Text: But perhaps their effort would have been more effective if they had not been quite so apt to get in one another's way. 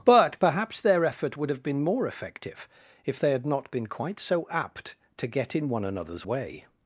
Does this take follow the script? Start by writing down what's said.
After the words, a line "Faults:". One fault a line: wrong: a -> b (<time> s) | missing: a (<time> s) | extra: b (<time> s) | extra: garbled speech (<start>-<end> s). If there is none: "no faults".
But perhaps their effort would have been more effective if they had not been quite so apt to get in one another's way.
Faults:
no faults